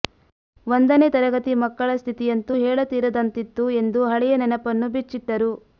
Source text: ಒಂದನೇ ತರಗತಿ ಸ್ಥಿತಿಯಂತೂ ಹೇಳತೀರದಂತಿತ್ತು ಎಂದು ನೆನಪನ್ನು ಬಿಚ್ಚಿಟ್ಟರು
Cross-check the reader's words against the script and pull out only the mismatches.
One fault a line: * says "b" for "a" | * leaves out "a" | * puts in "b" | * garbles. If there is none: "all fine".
* puts in "ಮಕ್ಕಳ"
* puts in "ಹಳೆಯ"